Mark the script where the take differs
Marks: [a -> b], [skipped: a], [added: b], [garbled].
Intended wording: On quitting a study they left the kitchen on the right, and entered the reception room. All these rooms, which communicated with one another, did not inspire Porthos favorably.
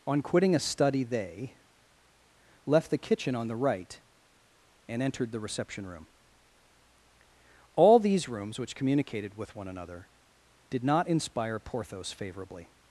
On quitting a study they left the kitchen on the right, and entered the reception room. All these rooms, which communicated with one another, did not inspire Porthos favorably.